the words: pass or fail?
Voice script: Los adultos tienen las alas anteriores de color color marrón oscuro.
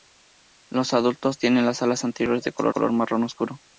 pass